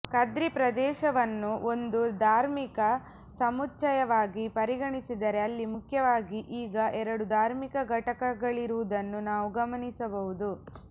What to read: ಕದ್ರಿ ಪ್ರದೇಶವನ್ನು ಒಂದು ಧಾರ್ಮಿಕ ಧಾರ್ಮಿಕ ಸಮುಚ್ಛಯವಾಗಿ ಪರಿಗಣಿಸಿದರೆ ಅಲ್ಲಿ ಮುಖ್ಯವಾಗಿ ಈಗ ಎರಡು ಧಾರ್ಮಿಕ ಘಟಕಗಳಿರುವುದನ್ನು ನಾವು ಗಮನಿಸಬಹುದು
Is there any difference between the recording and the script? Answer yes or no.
yes